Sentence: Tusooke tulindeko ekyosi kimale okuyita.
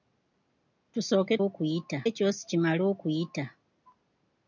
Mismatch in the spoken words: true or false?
true